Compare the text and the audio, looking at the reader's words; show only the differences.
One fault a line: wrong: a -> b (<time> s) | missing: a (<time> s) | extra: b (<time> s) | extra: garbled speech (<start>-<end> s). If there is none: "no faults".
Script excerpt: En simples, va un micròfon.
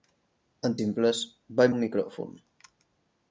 no faults